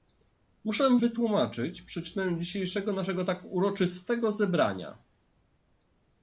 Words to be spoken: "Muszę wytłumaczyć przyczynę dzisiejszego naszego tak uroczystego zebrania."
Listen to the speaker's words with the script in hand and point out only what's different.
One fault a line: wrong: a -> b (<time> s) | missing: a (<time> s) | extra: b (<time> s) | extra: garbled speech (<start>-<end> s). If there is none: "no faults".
no faults